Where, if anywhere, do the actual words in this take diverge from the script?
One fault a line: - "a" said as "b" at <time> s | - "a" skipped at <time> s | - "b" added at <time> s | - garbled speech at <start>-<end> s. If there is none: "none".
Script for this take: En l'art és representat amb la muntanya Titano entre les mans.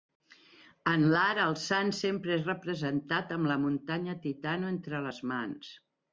- "el sant sempre" added at 1.4 s